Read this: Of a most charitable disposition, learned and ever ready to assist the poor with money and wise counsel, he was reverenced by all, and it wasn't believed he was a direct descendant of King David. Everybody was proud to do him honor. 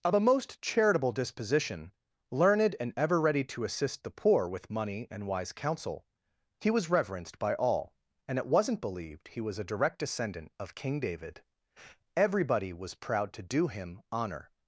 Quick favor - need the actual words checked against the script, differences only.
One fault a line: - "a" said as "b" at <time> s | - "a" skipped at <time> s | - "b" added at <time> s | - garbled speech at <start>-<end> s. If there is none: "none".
none